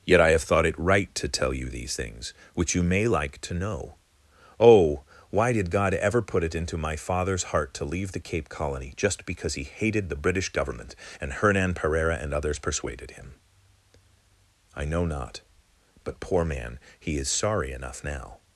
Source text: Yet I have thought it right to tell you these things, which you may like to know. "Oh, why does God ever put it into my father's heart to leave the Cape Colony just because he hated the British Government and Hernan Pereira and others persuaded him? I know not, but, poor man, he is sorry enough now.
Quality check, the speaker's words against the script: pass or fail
fail